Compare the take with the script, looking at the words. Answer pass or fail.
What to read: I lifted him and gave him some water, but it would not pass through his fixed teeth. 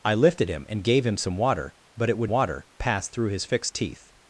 fail